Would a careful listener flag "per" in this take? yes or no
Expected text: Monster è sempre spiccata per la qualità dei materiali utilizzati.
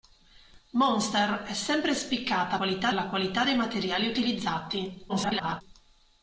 yes